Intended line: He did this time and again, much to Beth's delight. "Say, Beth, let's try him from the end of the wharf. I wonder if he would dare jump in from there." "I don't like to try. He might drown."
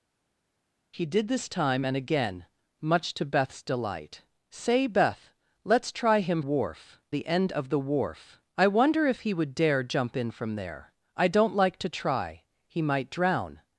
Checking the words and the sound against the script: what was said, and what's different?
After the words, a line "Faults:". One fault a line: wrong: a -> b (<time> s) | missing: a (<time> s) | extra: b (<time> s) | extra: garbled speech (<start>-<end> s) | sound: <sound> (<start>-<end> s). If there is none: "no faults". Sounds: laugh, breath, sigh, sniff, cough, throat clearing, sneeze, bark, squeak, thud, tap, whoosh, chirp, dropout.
He did this time and again, much to Beth's delight. "Say, Beth, let's try him wharf the end of the wharf. I wonder if he would dare jump in from there." "I don't like to try. He might drown."
Faults:
wrong: from -> wharf (6.4 s)